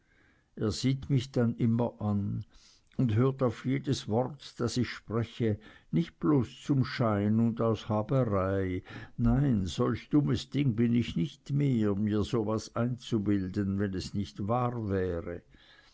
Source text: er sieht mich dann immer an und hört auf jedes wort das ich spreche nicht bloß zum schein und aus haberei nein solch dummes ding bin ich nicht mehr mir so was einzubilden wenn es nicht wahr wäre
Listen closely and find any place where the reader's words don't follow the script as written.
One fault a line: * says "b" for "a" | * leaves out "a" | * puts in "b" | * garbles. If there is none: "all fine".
all fine